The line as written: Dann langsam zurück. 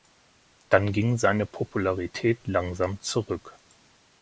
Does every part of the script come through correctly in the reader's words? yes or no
no